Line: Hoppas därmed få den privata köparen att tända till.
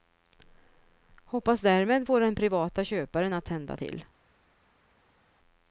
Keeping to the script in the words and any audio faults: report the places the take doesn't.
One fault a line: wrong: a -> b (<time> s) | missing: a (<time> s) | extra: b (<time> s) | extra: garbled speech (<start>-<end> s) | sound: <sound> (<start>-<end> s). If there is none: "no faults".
no faults